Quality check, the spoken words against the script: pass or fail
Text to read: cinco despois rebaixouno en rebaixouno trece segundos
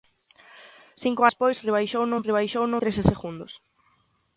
pass